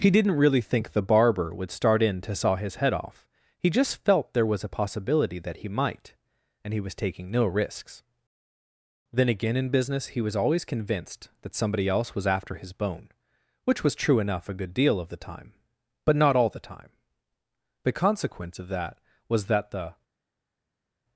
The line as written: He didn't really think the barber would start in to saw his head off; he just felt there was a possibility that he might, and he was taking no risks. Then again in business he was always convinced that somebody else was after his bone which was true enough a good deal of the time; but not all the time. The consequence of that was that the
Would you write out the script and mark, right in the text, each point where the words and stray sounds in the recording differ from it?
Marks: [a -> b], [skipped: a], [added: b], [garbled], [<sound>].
He didn't really think the barber would start in to saw his head off; he just felt there was a possibility that he might, and he was taking no risks. Then again in business he was always convinced that somebody else was after his bone which was true enough a good deal of the time; but not all the time. The consequence of that was that the